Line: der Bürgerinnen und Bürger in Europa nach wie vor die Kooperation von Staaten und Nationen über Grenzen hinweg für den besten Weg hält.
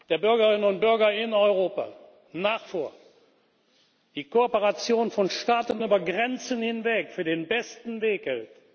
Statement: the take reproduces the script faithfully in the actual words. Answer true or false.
false